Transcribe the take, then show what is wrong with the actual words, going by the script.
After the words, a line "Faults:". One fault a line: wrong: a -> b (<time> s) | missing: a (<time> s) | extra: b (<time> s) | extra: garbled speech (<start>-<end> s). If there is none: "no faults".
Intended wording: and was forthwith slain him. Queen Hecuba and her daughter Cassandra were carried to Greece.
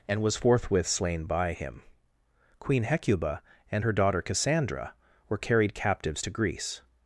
and was forthwith slain by him. Queen Hecuba and her daughter Cassandra were carried captives to Greece.
Faults:
extra: by (1.2 s)
extra: captives (5.7 s)